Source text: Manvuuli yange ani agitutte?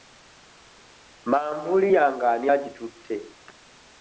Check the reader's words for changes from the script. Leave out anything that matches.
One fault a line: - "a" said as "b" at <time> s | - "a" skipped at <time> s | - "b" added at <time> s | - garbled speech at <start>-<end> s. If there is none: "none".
none